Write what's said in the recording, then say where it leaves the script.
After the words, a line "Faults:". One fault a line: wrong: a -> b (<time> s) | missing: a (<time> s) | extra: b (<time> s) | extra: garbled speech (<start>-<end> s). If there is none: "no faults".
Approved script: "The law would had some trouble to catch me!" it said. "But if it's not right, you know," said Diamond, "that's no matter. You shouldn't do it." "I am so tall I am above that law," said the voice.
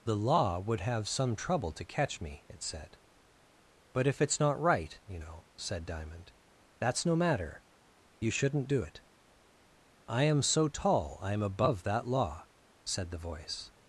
"The law would have some trouble to catch me!" it said. "But if it's not right, you know," said Diamond, "that's no matter. You shouldn't do it." "I am so tall I am above that law," said the voice.
Faults:
wrong: had -> have (0.8 s)